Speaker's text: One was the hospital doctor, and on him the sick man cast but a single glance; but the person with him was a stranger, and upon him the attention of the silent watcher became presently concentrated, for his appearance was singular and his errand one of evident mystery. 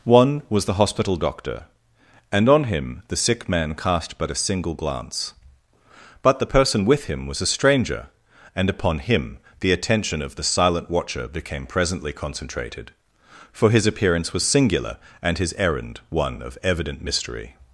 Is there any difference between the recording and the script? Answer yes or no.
no